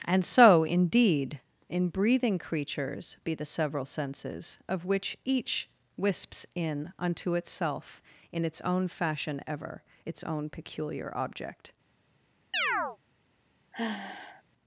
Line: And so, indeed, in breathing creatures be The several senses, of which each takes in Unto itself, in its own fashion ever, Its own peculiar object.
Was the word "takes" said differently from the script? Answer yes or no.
yes